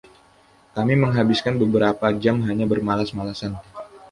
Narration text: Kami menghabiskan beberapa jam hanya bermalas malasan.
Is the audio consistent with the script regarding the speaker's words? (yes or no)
yes